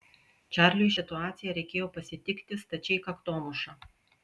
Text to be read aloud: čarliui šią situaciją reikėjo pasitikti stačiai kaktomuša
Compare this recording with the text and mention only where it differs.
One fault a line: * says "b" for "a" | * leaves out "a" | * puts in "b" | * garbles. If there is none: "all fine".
* leaves out "šią"